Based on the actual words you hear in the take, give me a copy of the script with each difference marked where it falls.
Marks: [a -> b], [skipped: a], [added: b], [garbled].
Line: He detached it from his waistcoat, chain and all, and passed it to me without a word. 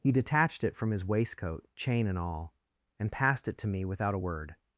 He detached it from his waistcoat, chain and all, and passed it to me without a word.